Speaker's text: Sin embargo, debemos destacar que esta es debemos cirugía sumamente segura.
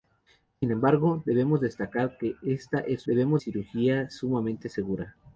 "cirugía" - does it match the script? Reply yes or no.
yes